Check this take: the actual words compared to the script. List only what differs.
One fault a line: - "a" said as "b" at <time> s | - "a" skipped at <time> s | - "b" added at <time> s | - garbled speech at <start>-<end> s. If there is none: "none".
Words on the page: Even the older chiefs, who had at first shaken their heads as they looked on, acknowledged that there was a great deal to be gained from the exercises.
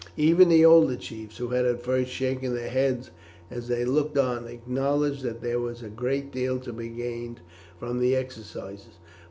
none